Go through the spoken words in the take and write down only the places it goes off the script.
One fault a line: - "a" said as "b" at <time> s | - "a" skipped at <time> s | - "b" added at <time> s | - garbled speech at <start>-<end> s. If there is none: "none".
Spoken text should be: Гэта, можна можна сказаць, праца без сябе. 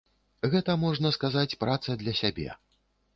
- "можна" skipped at 1.1 s
- "без" said as "для" at 2.0 s